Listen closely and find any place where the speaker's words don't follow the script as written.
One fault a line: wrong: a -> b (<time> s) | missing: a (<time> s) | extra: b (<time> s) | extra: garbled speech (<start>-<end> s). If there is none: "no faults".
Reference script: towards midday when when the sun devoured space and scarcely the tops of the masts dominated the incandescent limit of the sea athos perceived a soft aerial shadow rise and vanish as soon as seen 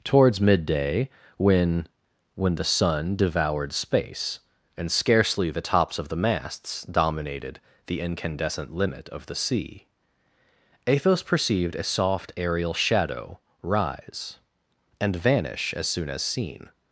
no faults